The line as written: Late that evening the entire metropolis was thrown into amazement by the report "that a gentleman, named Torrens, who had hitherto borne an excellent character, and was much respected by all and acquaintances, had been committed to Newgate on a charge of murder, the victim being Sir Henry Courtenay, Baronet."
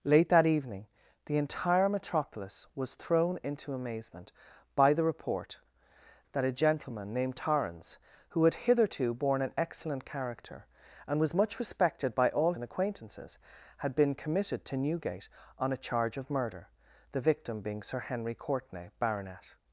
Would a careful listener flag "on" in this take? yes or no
no